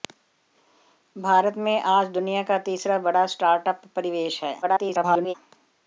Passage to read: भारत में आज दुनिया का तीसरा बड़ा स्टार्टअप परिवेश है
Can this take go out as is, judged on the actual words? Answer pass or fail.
fail